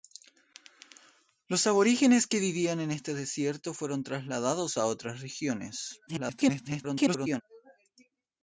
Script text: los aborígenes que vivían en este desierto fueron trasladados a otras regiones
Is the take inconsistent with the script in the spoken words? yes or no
yes